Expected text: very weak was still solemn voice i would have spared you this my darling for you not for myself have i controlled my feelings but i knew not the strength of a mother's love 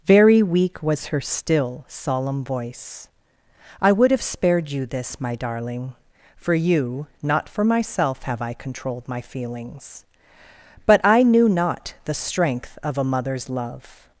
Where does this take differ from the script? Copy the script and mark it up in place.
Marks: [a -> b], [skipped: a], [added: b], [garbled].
very weak was [added: her] still solemn voice i would have spared you this my darling for you not for myself have i controlled my feelings but i knew not the strength of a mother's love